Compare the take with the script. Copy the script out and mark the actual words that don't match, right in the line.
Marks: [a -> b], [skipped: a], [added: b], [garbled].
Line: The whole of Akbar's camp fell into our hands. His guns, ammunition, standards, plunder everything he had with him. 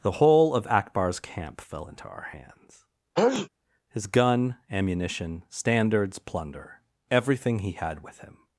The whole of Akbar's camp fell into our hands. His [guns, -> gun] ammunition, standards, plunder everything he had with him.